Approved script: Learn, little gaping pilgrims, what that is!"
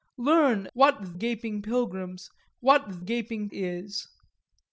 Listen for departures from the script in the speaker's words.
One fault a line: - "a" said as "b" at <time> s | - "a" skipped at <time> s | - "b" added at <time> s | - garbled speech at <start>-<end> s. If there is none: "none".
- "little" said as "what" at 0.7 s
- "that" said as "gaping" at 3.0 s